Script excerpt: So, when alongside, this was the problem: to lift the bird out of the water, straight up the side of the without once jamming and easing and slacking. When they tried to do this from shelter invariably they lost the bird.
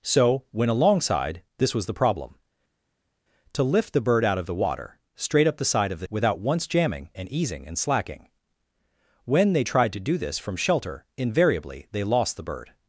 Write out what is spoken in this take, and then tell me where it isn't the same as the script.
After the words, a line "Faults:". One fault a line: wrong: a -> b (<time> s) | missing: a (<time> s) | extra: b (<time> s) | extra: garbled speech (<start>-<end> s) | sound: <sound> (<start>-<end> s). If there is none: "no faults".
So, when alongside, this was the problem: to lift the bird out of the water, straight up the side of the without once jamming and easing and slacking. When they tried to do this from shelter invariably they lost the bird.
Faults:
no faults